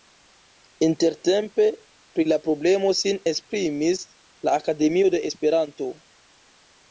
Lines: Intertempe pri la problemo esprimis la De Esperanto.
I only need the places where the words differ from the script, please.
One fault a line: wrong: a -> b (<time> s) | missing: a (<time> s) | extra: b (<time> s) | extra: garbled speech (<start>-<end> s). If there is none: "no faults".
extra: sin (3.0 s)
extra: Akademio (4.6 s)